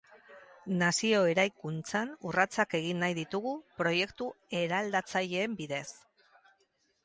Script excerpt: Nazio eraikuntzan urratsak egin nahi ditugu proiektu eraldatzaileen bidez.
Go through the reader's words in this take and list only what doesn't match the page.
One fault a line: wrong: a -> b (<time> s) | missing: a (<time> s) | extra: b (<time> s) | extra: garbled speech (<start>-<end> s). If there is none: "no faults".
no faults